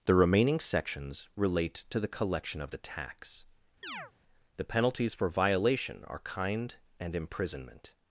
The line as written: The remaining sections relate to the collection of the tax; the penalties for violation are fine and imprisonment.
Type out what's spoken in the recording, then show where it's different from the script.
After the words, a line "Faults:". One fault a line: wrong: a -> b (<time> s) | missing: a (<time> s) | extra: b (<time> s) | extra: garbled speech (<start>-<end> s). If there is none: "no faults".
The remaining sections relate to the collection of the tax; the penalties for violation are kind and imprisonment.
Faults:
wrong: fine -> kind (6.2 s)